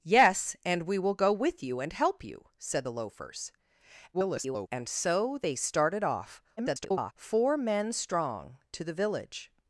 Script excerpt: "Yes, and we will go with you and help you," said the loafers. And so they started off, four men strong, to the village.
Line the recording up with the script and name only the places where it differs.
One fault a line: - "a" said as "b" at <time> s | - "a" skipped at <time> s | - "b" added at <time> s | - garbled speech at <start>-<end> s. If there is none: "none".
- garbled speech at 4.1-4.7 s
- garbled speech at 6.6-7.1 s